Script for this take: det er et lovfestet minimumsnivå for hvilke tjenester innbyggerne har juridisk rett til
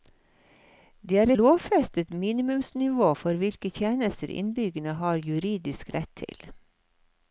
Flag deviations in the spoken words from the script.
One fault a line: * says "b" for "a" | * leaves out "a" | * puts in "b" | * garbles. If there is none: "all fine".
* leaves out "et"